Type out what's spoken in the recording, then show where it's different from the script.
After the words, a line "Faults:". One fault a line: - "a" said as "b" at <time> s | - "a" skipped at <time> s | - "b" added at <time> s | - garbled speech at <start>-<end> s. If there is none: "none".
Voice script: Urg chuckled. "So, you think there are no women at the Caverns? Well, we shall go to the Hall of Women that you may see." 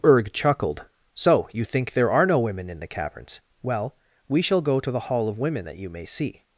Urg chuckled. "So, you think there are no women in the Caverns? Well, we shall go to the Hall of Women that you may see."
Faults:
- "at" said as "in" at 2.7 s